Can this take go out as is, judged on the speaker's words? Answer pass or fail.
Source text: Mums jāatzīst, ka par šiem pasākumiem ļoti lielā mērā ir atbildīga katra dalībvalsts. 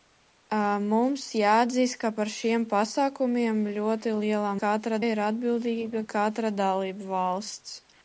fail